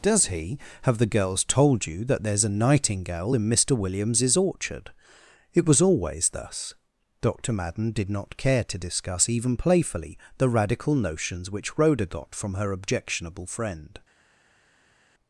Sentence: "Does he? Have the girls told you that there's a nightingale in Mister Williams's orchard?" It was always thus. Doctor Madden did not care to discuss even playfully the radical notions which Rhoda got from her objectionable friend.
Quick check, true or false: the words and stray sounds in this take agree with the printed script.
true